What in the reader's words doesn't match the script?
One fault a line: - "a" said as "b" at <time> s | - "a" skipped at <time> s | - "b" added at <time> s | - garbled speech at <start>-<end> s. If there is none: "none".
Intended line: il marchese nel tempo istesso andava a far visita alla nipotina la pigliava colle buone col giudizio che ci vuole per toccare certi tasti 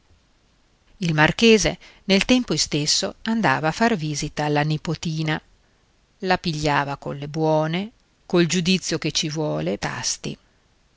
- "per toccare certi" skipped at 9.8 s